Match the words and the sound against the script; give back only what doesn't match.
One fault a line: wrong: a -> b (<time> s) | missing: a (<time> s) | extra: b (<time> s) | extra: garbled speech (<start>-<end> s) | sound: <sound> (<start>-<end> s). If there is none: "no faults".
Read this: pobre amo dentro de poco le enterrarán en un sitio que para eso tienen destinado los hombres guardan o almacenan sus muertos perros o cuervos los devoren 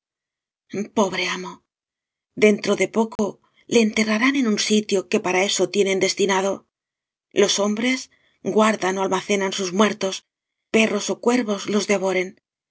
sound: dropout (3.2-3.2 s)